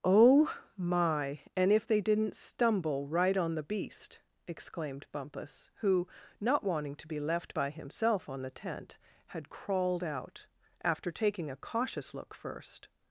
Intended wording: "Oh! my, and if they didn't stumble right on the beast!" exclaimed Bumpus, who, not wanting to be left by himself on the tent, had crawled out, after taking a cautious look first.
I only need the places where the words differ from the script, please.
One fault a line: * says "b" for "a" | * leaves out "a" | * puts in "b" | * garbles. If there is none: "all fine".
all fine